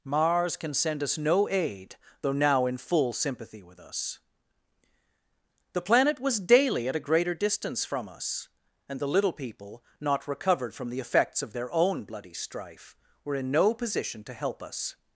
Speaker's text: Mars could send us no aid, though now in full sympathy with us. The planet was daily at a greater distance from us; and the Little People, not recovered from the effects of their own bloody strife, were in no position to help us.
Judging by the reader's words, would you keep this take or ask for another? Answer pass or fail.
fail